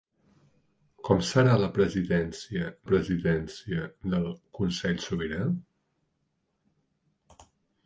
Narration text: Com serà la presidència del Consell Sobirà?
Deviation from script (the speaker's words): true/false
true